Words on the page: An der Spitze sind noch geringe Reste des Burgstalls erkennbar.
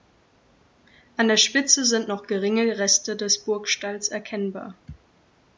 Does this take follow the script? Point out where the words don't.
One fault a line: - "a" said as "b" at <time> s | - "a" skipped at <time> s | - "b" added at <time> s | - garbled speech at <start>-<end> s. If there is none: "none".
none